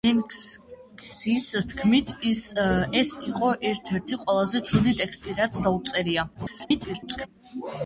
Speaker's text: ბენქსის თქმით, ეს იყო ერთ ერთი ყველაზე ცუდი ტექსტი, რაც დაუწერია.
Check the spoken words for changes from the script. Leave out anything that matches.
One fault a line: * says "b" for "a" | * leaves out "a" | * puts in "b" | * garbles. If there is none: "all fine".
* garbles